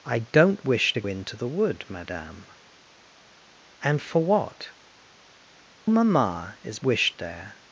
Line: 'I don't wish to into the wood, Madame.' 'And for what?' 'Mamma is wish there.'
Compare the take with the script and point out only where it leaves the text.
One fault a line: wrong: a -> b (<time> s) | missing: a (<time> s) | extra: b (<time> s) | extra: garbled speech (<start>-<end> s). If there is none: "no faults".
no faults